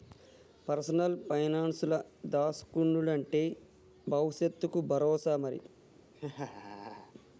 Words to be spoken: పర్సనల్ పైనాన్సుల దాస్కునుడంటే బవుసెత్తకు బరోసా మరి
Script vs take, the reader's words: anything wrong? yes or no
no